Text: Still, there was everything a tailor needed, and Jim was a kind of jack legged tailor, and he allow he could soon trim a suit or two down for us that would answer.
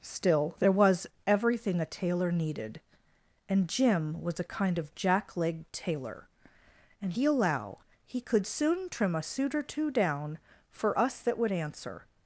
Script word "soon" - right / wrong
right